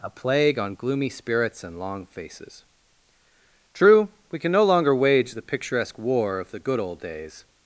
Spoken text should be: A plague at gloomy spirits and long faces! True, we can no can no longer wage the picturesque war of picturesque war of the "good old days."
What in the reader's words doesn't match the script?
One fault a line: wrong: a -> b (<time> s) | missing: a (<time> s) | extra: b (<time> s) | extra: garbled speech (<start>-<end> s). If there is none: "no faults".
wrong: at -> on (0.6 s)
missing: can no (4.6 s)
missing: picturesque war of (6.5 s)